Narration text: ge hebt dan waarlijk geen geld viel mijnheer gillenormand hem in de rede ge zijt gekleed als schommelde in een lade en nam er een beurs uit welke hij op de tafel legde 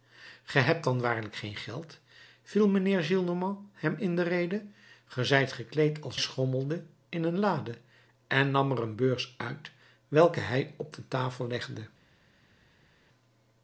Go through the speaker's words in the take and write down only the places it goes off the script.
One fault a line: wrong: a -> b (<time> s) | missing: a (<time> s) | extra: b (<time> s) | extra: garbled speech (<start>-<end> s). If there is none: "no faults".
no faults